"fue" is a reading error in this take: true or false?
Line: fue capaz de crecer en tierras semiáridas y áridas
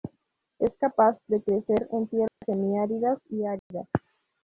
true